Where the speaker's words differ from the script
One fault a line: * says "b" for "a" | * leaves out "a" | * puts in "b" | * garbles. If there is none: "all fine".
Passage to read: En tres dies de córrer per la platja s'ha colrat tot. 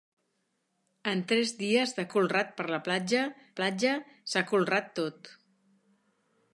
* says "colrat" for "córrer"
* puts in "platja"